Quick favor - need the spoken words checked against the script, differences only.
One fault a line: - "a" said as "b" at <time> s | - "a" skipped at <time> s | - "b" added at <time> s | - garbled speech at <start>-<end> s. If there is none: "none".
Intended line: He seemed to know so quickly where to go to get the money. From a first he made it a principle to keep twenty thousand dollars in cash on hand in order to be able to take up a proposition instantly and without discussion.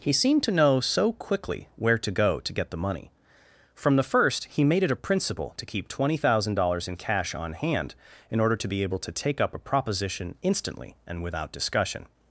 - "a" said as "the" at 4.0 s